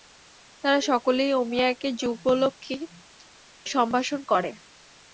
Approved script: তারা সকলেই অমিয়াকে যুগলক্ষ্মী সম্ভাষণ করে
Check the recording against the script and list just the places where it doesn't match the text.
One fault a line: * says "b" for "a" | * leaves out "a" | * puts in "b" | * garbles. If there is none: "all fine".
all fine